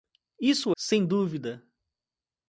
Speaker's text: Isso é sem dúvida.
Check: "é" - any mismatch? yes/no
yes